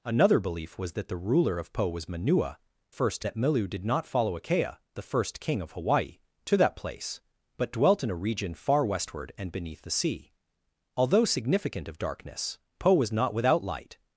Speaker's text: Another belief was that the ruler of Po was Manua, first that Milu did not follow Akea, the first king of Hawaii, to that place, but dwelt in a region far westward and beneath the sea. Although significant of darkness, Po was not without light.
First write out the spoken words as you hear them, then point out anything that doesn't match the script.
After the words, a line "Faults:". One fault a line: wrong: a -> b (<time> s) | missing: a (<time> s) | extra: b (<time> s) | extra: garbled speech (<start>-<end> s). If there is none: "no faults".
Another belief was that the ruler of Po was Manua, first that Milu did not follow Akea, the first king of Hawaii, to that place, but dwelt in a region far westward and beneath the sea. Although significant of darkness, Po was not without light.
Faults:
no faults